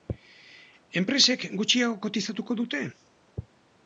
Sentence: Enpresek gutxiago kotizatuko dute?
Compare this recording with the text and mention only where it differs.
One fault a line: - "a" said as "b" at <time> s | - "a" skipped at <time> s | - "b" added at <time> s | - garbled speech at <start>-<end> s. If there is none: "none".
none